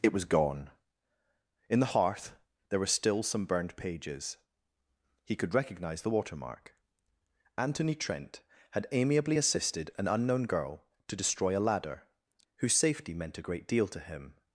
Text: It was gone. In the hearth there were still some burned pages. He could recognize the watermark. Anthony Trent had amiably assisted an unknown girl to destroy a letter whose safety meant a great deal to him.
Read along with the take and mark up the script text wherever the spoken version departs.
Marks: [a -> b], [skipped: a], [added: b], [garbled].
It was gone. In the hearth there were still some burned pages. He could recognize the watermark. Anthony Trent had amiably assisted an unknown girl to destroy a [letter -> ladder] whose safety meant a great deal to him.